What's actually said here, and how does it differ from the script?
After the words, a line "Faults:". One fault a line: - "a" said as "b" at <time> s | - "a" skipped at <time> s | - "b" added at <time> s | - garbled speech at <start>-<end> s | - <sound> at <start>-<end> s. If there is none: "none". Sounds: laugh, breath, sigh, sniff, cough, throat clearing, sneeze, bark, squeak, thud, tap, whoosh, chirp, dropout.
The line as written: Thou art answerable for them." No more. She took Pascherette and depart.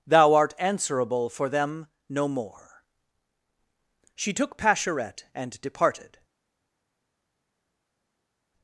Thou art answerable for them." No more. She took Pascherette and departed.
Faults:
- "depart" said as "departed" at 5.6 s